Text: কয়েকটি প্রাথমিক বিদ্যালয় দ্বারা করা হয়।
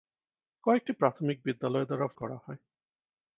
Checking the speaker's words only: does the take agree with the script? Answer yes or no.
yes